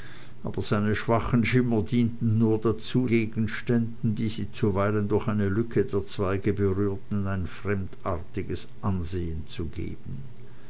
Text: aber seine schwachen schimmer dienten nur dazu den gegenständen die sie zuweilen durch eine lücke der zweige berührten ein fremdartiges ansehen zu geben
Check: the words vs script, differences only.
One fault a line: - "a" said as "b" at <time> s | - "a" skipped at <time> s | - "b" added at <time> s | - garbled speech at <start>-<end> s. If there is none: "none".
- "den" skipped at 3.1 s